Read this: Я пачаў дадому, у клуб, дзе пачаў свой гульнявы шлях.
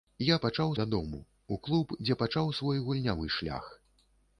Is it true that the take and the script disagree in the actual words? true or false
false